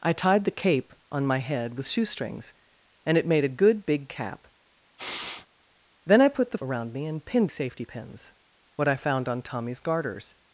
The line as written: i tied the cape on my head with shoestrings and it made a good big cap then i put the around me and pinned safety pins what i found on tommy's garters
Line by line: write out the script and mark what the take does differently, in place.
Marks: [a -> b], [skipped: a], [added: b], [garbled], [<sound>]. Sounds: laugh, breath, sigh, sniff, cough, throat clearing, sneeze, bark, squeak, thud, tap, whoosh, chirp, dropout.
i tied the cape on my head with shoestrings and it made a good big cap [sniff] then i put the around me and pinned safety pins what i found on tommy's garters